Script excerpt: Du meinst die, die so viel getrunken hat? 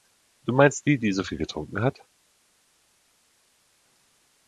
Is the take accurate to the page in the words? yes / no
yes